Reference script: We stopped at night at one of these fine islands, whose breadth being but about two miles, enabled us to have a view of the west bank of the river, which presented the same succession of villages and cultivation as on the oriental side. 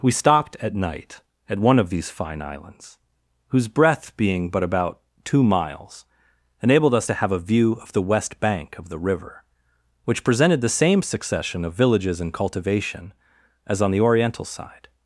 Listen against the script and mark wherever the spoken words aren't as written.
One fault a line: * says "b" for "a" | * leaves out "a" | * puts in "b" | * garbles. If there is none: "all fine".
all fine